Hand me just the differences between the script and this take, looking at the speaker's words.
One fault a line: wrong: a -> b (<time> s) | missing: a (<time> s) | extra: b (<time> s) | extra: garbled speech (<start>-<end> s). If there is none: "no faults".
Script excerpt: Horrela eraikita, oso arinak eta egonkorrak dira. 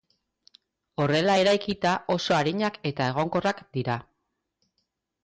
no faults